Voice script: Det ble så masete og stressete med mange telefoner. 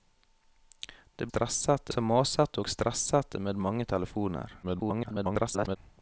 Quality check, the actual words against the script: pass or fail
fail